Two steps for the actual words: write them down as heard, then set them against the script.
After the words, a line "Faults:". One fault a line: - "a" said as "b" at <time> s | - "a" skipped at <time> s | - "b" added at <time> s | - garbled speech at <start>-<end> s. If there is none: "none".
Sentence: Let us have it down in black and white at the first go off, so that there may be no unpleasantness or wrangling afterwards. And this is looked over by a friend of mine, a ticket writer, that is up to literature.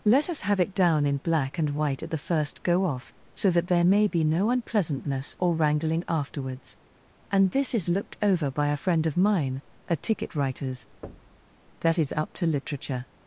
Let us have it down in black and white at the first go off, so that there may be no unpleasantness or wrangling afterwards. And this is looked over by a friend of mine, a ticket writers, that is up to literature.
Faults:
- "writer" said as "writers" at 10.3 s